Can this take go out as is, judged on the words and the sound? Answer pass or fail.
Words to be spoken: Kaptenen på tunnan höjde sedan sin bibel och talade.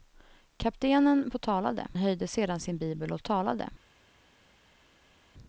fail